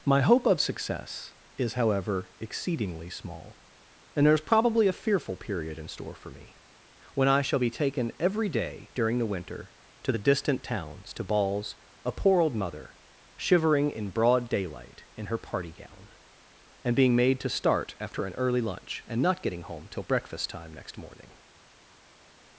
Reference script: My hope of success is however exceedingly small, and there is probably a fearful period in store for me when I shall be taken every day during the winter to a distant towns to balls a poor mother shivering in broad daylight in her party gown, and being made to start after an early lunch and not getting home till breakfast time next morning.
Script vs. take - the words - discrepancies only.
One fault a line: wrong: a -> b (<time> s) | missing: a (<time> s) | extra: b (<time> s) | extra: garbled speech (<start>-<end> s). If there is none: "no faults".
wrong: a -> the (10.1 s)
extra: old (12.4 s)